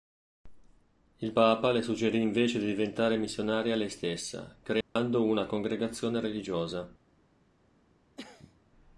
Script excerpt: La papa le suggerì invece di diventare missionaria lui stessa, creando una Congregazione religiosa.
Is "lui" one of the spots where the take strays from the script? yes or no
yes